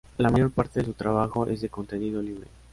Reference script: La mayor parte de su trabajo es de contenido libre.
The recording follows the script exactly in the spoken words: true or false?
true